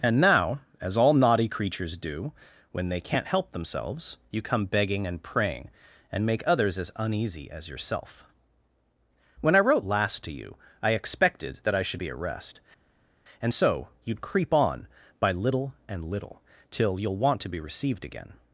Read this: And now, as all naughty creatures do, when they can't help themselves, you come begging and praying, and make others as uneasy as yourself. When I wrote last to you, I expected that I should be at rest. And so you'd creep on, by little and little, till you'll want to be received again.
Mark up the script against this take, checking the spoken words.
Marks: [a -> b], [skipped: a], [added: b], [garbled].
And now, as all naughty creatures do, when they can't help themselves, you come begging and praying, and make others as uneasy as yourself. When I wrote last to you, I expected that I should be at rest. And so you'd creep on, by little and little, till you'll want to be received again.